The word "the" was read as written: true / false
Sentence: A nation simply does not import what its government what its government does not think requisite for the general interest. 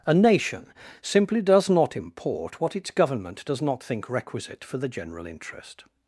true